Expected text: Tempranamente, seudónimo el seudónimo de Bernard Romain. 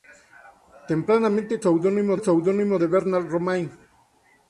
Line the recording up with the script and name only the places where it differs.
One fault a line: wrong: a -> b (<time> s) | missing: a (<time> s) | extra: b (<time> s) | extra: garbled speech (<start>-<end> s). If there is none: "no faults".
no faults